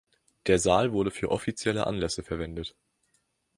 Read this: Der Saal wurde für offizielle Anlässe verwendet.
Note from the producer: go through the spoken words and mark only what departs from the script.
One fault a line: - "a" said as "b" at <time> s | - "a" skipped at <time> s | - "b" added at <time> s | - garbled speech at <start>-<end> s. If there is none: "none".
none